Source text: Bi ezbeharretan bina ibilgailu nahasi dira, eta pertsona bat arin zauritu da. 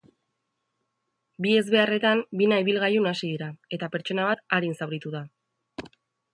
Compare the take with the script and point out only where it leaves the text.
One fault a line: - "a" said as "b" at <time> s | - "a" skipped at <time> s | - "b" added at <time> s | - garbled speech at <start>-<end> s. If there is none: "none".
none